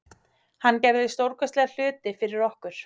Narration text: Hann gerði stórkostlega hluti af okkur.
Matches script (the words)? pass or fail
fail